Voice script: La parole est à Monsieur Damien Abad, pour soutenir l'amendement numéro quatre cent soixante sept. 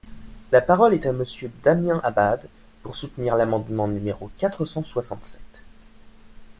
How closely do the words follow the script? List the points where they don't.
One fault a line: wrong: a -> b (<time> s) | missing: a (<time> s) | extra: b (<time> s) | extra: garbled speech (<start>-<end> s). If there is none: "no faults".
no faults